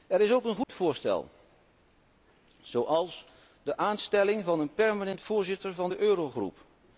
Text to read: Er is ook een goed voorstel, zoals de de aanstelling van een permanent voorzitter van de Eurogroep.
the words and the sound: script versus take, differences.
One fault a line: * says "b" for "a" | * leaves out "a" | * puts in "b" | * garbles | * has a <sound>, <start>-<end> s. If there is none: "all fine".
* has a dropout, 0.6-0.7 s
* leaves out "de"